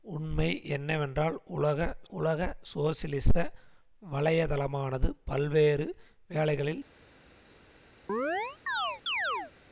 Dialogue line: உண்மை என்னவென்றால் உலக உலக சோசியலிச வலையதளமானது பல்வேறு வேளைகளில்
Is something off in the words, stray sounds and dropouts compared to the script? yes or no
yes